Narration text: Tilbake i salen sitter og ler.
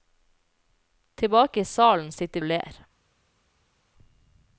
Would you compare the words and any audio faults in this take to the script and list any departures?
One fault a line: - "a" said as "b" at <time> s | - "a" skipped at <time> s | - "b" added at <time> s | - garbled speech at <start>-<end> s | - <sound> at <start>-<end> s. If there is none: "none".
none